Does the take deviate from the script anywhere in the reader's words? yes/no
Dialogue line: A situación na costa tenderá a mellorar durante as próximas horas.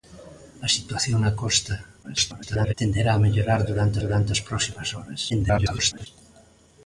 yes